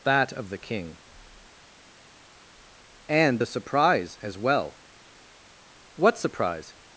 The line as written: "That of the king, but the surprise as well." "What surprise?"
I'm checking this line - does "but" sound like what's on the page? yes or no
no